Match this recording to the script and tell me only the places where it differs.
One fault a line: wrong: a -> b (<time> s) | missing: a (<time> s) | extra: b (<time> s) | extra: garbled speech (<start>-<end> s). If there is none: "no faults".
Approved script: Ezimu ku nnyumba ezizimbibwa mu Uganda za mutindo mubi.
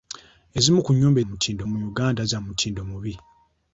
wrong: ezizimbibwa -> mutindo (1.3 s)